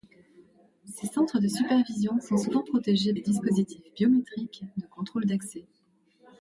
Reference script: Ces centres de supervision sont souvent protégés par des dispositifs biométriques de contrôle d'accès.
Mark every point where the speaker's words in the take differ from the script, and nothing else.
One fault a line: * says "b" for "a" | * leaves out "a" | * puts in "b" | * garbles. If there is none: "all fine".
* leaves out "par"